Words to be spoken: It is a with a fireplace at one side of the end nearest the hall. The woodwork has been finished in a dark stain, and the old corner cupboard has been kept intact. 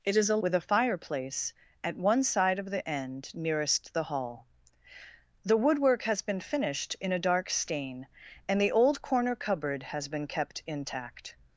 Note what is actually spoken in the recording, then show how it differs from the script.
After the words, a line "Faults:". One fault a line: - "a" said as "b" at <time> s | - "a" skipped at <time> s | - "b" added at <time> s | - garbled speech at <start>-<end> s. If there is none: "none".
It is a with a fireplace at one side of the end nearest the hall. The woodwork has been finished in a dark stain, and the old corner cupboard has been kept intact.
Faults:
none